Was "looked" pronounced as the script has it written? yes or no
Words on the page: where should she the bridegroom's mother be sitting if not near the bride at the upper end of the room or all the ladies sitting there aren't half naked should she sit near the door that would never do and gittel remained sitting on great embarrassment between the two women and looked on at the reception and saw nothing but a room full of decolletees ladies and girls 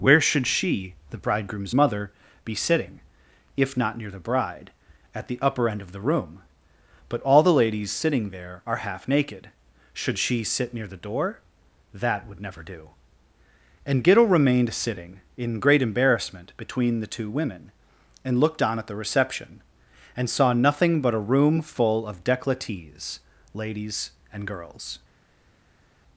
yes